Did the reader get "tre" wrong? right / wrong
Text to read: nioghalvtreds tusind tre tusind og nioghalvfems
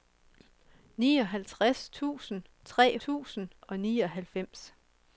right